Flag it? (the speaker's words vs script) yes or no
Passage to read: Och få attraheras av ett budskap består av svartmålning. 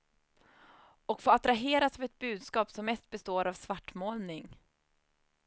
yes